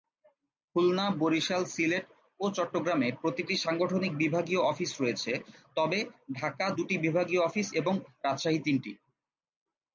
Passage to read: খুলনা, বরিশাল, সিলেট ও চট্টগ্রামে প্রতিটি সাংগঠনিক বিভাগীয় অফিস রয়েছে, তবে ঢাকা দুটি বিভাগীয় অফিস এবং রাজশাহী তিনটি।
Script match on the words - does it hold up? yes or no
yes